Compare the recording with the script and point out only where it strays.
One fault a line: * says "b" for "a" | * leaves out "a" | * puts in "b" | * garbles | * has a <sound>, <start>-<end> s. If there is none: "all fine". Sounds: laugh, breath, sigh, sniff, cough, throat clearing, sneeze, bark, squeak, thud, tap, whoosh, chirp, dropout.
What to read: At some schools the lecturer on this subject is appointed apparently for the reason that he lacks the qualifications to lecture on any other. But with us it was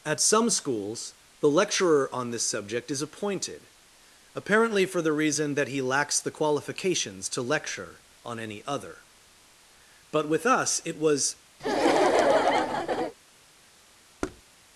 * has a laugh, 11.6-13.1 s
* has a thud, 14.2-14.4 s